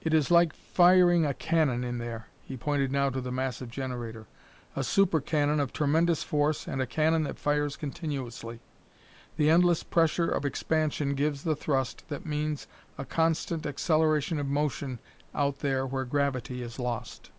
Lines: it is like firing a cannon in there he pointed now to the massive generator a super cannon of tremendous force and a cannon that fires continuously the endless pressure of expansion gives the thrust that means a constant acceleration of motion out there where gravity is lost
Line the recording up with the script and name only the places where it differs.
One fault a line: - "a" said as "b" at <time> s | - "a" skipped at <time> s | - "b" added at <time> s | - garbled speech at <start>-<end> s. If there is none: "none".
none